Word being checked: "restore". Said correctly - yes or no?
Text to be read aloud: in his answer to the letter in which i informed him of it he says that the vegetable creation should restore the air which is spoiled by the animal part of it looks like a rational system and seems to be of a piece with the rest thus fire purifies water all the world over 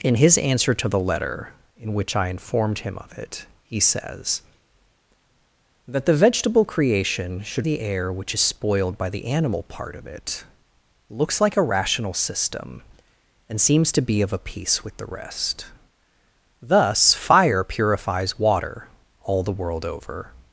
no